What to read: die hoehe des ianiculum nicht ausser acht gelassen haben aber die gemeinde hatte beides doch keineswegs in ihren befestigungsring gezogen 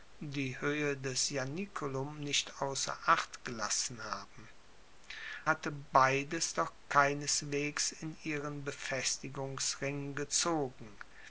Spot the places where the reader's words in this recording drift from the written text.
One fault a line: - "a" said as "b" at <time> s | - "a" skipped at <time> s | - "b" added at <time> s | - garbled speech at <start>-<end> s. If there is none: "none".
- "aber die gemeinde" skipped at 4.5 s